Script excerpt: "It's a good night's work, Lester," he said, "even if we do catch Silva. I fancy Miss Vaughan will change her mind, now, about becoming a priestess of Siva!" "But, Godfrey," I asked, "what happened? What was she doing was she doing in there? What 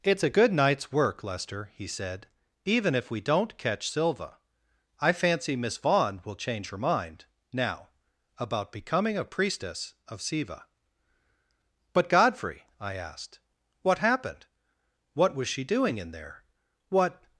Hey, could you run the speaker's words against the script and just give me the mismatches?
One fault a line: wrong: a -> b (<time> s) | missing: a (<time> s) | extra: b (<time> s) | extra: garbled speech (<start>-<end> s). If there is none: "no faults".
wrong: do -> don't (3.2 s)
missing: was she doing (16.0 s)